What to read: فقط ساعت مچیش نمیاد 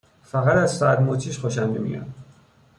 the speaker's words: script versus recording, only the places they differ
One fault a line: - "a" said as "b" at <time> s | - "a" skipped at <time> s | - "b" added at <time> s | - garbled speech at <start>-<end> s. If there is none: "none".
- "از" added at 0.6 s
- "خوشم" added at 1.4 s